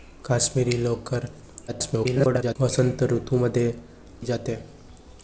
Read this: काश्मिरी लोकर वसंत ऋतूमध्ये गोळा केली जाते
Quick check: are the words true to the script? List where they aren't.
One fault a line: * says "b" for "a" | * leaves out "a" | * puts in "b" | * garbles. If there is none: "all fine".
* garbles
* leaves out "गोळा केली"